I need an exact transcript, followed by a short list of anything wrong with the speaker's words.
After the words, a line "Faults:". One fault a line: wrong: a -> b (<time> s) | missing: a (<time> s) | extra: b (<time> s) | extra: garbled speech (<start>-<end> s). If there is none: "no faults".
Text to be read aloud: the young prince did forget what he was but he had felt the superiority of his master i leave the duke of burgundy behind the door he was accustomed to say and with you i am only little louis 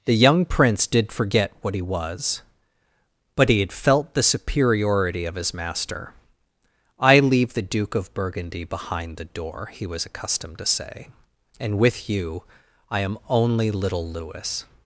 the young prince did forget what he was but he had felt the superiority of his master i leave the duke of burgundy behind the door he was accustomed to say and with you i am only little louis
Faults:
no faults